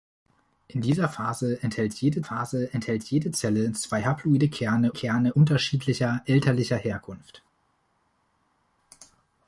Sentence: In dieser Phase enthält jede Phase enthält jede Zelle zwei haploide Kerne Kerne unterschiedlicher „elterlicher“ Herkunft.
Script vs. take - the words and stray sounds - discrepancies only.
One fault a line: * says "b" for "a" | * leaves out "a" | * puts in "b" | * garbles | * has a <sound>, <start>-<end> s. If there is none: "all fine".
all fine